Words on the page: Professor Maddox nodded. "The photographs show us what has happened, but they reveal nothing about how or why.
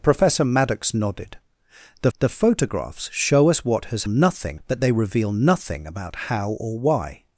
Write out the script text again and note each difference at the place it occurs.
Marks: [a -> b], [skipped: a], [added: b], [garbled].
Professor Maddox nodded. "The [added: the] photographs show us what has [happened, -> nothing] but they reveal nothing about how or why.